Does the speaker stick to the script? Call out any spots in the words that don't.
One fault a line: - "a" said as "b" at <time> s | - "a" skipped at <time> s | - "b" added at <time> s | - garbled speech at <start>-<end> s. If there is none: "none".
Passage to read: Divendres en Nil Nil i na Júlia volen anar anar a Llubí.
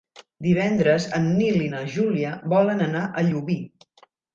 - "Nil" skipped at 1.6 s
- "anar" skipped at 3.1 s